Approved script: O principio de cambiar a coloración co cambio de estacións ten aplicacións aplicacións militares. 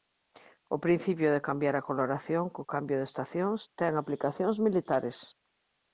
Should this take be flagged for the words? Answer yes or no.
yes